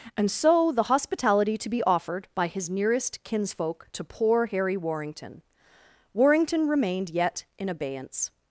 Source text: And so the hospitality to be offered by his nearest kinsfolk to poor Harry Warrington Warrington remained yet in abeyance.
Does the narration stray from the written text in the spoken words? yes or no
no